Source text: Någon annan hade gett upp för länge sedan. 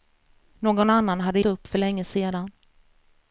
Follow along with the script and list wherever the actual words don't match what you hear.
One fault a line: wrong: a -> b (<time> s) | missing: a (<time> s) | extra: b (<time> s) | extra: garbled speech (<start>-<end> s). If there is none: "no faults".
missing: gett (1.4 s)